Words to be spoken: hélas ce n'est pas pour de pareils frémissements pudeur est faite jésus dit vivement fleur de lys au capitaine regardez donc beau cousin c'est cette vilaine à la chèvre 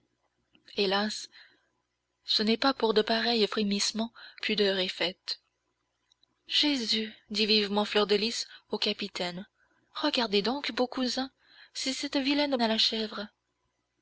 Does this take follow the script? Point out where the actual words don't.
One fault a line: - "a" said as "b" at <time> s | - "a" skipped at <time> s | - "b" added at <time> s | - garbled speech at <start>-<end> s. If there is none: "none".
none